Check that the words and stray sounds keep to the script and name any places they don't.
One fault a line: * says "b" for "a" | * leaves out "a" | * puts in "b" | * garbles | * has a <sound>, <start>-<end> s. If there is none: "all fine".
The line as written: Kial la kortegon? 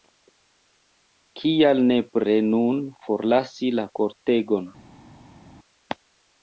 * puts in "nepre nun forlasi"